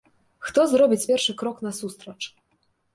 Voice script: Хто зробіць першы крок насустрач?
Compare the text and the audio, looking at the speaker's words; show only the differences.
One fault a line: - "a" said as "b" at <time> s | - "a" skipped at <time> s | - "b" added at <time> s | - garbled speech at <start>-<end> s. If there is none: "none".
none